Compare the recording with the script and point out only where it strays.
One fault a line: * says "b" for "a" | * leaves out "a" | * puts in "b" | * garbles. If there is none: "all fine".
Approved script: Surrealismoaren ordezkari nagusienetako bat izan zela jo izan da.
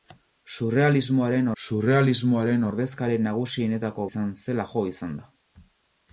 * puts in "surrealismoaren"
* leaves out "bat"